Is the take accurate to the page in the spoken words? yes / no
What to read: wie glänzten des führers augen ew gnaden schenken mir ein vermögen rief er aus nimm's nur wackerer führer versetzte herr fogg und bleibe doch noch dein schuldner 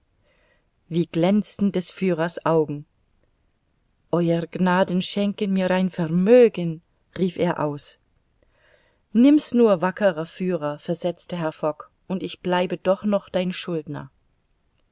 no